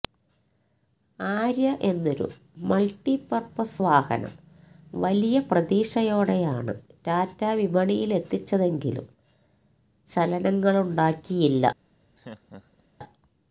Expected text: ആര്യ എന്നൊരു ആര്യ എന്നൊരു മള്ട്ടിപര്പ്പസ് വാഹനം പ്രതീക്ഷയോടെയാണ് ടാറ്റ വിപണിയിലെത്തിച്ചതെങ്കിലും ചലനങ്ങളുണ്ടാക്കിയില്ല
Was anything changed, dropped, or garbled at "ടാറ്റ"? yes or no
no